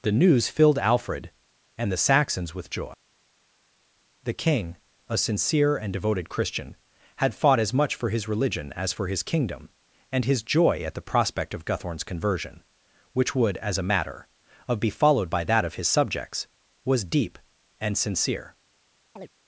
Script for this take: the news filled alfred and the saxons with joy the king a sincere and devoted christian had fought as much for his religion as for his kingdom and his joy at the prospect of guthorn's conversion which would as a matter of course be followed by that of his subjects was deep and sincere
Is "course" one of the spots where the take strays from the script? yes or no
yes